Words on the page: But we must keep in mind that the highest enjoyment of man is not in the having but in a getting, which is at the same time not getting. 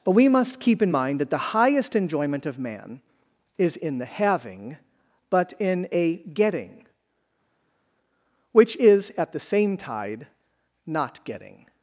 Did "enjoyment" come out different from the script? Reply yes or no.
no